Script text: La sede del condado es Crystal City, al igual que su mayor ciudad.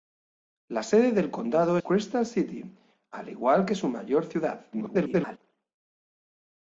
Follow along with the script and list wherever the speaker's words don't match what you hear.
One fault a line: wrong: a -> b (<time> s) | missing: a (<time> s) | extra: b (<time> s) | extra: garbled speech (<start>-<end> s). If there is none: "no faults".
missing: es (1.8 s)
extra: garbled speech (4.7-5.4 s)